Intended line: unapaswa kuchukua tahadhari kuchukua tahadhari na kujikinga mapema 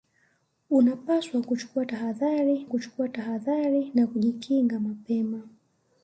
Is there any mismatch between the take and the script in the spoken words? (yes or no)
no